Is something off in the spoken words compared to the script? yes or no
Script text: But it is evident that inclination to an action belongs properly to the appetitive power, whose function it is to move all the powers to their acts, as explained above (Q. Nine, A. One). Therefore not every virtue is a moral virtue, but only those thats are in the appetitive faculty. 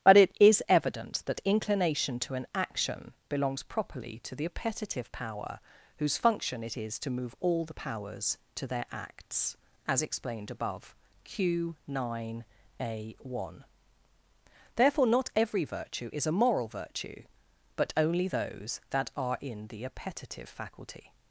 yes